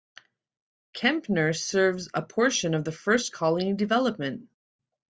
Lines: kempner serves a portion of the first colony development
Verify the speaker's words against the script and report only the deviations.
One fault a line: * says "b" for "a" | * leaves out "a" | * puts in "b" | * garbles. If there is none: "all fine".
all fine